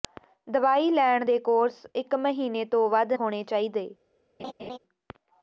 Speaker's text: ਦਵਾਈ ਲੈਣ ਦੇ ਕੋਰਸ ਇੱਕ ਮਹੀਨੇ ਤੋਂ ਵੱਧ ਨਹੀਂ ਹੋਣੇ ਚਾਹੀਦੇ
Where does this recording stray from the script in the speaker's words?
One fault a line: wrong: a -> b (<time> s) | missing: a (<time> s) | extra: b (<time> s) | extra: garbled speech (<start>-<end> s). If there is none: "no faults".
missing: ਨਹੀਂ (3.1 s)